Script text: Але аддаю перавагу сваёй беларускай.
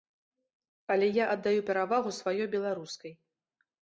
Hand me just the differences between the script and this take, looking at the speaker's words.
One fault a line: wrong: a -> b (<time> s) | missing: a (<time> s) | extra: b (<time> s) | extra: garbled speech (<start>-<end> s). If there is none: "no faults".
extra: я (1.2 s)